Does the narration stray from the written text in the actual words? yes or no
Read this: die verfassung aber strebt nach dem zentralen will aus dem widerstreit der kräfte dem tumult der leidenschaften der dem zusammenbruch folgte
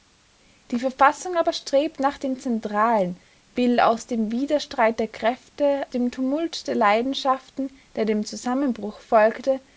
no